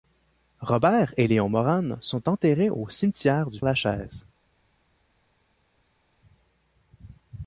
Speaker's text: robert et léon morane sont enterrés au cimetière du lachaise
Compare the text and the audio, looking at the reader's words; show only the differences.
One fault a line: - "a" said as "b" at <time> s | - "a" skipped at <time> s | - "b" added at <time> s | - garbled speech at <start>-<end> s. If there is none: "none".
none